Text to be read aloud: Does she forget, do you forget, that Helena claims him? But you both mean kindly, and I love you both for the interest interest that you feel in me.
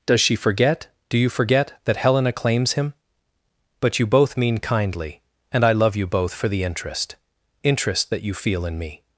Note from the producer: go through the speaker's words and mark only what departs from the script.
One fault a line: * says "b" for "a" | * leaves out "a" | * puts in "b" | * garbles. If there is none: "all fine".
all fine